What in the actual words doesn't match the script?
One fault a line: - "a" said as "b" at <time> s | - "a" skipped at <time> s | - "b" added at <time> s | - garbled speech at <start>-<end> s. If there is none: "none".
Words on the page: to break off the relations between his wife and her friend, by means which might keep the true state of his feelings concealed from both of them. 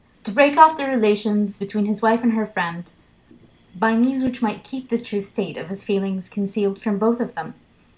none